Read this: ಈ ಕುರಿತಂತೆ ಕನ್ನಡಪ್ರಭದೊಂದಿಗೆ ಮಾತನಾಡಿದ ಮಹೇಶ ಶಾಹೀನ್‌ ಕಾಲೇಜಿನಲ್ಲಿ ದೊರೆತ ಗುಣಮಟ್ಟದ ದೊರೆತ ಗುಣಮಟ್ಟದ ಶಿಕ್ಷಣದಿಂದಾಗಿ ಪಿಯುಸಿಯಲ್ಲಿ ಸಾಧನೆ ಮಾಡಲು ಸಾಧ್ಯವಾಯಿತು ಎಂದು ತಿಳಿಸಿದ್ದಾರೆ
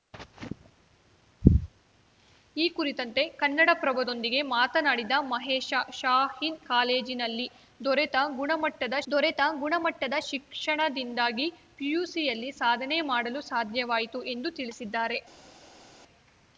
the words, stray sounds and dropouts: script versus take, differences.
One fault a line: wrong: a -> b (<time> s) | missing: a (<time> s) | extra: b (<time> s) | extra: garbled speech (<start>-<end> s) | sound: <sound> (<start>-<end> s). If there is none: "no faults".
no faults